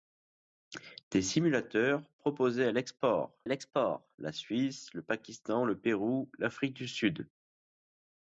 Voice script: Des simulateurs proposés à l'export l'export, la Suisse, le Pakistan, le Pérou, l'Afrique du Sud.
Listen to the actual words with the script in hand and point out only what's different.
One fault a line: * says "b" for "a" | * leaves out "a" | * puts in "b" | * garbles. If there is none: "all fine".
all fine